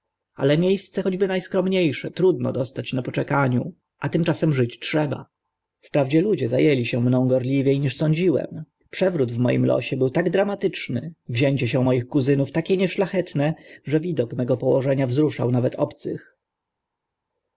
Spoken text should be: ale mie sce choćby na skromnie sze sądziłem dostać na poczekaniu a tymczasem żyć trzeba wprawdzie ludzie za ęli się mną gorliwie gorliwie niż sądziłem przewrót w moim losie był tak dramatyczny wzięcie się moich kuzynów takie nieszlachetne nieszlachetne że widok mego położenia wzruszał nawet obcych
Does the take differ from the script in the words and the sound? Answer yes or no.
yes